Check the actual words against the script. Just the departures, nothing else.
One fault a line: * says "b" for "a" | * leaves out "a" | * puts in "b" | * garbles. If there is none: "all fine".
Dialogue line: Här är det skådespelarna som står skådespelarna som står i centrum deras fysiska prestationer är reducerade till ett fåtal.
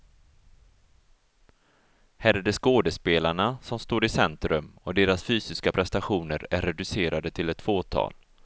* leaves out "skådespelarna som står"
* puts in "och"